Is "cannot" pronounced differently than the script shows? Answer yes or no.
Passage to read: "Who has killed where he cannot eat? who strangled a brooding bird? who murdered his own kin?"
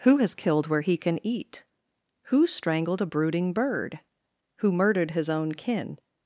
yes